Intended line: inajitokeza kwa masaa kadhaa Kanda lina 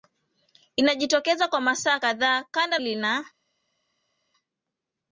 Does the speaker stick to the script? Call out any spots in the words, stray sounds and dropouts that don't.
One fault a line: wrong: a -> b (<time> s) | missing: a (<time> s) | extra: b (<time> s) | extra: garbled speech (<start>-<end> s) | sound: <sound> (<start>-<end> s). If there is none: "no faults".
no faults